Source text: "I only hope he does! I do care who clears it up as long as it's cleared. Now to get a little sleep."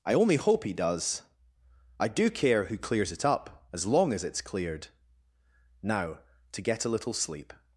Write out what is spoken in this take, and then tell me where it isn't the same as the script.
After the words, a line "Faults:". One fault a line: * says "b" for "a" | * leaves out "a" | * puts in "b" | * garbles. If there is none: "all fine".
"I only hope he does! I do care who clears it up as long as it's cleared. Now to get a little sleep."
Faults:
all fine